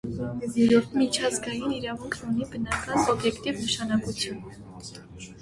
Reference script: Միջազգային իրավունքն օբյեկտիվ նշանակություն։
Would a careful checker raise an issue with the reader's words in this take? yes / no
yes